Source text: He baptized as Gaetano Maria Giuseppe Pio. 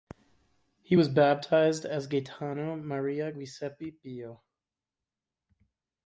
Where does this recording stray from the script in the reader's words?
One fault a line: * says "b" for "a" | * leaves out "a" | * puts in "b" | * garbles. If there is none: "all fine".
* puts in "was"